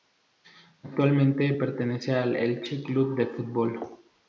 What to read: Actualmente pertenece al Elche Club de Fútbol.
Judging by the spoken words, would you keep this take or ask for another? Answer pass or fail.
pass